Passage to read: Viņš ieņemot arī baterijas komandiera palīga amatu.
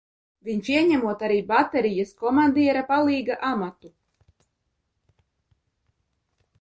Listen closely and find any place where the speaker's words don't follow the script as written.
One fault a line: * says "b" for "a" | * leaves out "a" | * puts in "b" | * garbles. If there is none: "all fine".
all fine